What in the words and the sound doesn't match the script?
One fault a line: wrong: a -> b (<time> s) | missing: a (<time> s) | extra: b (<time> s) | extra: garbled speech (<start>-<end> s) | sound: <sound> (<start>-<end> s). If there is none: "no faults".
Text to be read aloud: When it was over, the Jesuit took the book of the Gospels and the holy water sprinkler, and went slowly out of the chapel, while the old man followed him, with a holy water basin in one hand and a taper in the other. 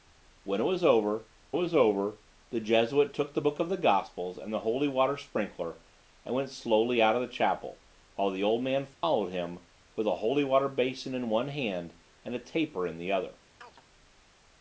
extra: was over (1.5 s)
sound: dropout (8.9-9.0 s)
sound: chirp (13.6-13.8 s)